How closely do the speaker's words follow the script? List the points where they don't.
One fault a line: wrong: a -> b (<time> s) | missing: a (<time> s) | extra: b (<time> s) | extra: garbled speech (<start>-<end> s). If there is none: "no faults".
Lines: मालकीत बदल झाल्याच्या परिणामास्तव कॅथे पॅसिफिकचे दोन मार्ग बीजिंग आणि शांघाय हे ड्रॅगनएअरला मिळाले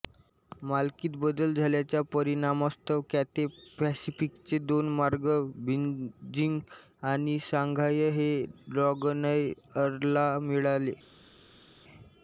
no faults